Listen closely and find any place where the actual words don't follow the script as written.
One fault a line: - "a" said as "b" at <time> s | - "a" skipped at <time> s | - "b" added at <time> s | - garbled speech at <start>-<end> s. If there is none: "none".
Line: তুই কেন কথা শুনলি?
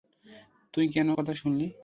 none